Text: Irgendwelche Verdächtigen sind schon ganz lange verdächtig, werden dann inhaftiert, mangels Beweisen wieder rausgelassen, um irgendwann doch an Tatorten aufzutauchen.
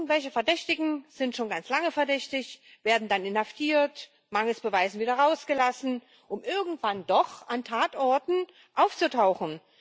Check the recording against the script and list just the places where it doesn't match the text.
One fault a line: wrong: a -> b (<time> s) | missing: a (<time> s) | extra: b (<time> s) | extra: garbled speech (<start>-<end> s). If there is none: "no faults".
no faults